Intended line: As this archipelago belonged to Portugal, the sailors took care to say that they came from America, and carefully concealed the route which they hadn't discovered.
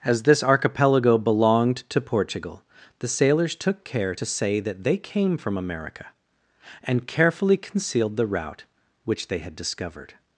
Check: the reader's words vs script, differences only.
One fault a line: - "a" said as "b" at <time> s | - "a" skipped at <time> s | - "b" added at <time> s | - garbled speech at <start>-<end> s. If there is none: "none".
- "hadn't" said as "had" at 9.4 s